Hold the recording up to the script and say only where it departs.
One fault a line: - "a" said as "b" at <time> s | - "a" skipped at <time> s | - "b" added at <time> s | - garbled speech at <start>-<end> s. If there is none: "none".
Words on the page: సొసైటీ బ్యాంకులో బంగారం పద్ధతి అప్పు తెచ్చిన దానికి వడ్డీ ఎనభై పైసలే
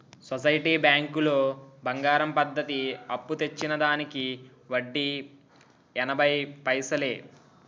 none